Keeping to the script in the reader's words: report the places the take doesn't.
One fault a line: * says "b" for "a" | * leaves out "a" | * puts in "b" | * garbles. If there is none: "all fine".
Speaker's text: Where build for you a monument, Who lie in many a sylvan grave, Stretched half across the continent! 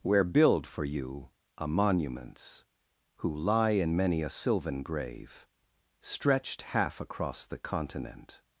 * says "monuments" for "monument"